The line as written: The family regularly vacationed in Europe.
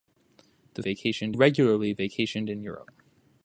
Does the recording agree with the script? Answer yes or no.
no